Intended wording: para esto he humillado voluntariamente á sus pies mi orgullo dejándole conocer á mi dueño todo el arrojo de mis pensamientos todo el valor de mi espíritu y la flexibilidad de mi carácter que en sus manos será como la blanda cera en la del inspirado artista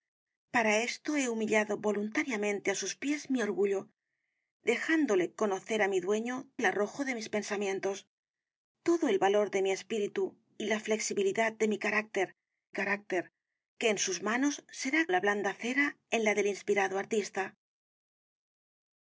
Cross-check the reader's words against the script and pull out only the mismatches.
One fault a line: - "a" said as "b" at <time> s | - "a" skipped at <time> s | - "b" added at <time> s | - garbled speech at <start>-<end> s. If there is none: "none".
- "todo" skipped at 6.3 s
- "carácter" added at 12.8 s
- "como" skipped at 15.0 s